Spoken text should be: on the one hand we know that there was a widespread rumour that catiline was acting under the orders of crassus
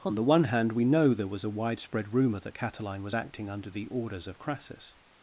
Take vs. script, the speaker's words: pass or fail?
fail